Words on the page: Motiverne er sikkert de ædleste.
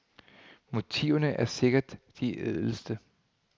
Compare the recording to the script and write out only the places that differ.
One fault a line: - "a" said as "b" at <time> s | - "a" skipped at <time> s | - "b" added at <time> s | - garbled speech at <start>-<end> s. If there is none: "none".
none